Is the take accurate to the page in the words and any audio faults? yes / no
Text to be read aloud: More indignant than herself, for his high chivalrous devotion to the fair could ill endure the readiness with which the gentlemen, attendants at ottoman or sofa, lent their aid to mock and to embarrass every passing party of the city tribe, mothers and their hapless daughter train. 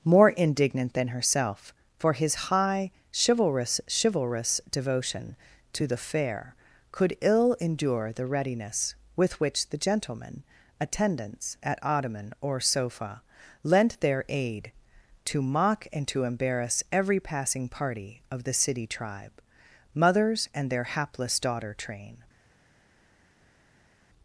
no